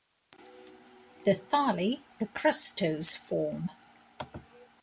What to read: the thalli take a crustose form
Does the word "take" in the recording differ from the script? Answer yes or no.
yes